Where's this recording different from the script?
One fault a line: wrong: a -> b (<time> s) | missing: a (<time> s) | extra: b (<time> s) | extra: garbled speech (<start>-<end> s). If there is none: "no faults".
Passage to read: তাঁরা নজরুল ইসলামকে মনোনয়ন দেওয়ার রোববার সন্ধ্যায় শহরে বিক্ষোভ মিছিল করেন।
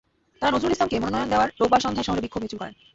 no faults